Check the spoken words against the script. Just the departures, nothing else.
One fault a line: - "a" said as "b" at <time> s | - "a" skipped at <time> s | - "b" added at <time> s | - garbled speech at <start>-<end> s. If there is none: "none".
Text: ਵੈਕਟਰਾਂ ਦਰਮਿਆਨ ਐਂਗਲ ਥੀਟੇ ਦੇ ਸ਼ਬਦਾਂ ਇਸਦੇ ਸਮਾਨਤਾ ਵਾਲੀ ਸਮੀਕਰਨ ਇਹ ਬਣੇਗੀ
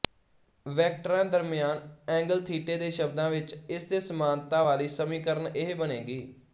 - "ਵਿੱਚ" added at 3.3 s